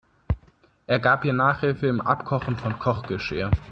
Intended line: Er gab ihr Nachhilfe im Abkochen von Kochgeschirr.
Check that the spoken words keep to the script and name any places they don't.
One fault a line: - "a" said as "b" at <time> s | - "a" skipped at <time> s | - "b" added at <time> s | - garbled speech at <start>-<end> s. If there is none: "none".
none